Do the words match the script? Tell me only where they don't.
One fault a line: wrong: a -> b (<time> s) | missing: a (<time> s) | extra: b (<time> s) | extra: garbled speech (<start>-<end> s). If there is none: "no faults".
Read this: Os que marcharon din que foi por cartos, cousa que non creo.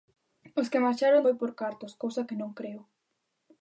missing: din que (1.3 s)